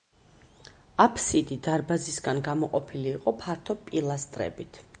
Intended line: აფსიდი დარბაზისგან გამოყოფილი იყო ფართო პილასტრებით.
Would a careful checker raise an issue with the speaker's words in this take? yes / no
no